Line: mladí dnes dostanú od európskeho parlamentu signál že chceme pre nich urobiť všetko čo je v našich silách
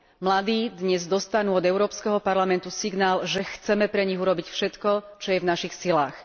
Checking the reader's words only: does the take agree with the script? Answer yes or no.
yes